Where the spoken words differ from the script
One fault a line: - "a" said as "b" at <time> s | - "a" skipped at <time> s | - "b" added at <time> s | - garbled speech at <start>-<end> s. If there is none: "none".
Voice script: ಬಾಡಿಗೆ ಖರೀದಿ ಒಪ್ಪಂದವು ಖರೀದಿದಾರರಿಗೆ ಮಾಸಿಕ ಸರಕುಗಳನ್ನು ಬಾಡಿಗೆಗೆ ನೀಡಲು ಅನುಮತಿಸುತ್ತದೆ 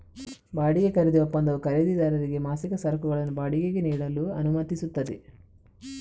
none